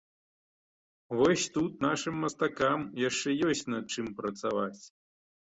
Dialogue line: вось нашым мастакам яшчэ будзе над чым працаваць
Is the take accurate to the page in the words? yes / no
no